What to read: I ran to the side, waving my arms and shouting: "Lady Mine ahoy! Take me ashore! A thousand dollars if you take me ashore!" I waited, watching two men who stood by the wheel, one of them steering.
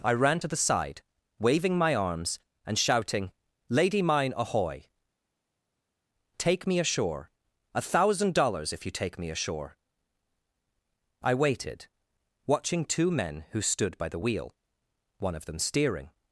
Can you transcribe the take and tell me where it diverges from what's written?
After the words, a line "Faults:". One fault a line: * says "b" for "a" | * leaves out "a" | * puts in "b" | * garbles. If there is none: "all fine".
I ran to the side, waving my arms and shouting: "Lady Mine ahoy! Take me ashore! A thousand dollars if you take me ashore!" I waited, watching two men who stood by the wheel, one of them steering.
Faults:
all fine